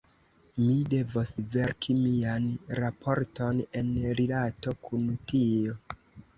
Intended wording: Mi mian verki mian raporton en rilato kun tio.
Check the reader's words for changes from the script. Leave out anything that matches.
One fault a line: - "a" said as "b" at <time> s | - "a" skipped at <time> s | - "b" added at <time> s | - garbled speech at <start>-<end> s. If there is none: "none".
- "mian" said as "devos" at 0.9 s